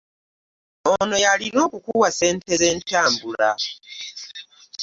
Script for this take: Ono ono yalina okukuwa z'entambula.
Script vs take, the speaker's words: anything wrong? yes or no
yes